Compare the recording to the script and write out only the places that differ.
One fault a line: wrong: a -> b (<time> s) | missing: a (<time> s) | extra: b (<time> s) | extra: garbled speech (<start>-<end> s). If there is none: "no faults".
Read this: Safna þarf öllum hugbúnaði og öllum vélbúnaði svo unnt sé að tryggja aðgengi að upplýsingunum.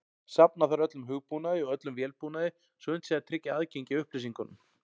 no faults